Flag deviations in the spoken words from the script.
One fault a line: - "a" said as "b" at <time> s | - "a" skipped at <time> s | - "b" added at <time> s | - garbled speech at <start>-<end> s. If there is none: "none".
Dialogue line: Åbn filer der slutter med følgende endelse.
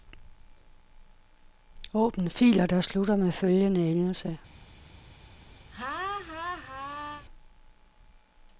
none